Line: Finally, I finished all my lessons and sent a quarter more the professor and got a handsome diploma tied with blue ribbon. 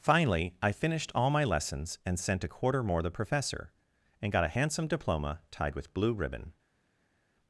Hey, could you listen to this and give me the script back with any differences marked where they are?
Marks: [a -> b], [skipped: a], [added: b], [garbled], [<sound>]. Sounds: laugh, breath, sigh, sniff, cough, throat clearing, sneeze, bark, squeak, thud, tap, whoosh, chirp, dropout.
Finally, I finished all my lessons and sent a quarter more the professor and got a handsome diploma tied with blue ribbon.